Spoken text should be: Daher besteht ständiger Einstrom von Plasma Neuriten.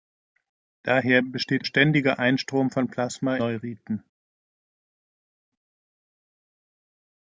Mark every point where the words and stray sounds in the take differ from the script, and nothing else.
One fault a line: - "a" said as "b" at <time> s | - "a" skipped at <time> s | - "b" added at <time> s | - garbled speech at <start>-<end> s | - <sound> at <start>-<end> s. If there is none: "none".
none